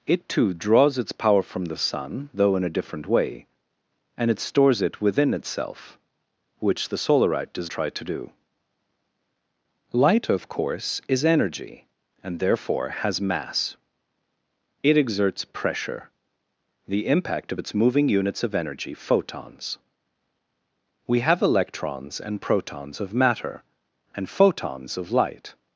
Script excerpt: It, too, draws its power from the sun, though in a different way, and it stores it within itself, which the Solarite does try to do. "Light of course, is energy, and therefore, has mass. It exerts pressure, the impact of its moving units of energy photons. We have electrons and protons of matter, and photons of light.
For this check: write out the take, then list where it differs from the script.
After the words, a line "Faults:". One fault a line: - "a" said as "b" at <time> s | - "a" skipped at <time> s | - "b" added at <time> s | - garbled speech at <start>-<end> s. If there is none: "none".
It, too, draws its power from the sun, though in a different way, and it stores it within itself, which the Solarite does try to do. "Light of course, is energy, and therefore, has mass. It exerts pressure, the impact of its moving units of energy photons. We have electrons and protons of matter, and photons of light.
Faults:
none